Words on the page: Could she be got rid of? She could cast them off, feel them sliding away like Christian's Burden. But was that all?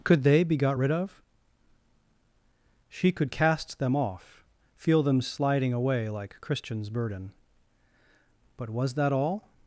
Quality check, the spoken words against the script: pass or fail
fail